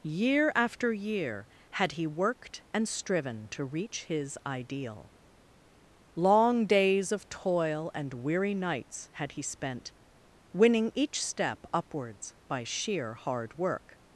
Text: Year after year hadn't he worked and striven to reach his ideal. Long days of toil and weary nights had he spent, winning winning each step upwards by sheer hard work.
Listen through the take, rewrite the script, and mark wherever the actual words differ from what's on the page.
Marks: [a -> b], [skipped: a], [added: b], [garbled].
Year after year [hadn't -> had] he worked and striven to reach his ideal. Long days of toil and weary nights had he spent, winning [skipped: winning] each step upwards by sheer hard work.